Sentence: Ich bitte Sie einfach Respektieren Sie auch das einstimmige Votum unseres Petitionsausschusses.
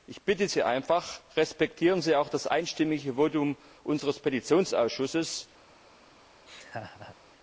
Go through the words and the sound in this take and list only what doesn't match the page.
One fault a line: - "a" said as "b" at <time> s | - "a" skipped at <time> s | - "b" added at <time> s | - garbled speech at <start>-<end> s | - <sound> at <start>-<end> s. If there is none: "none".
- laugh at 6.5-7.2 s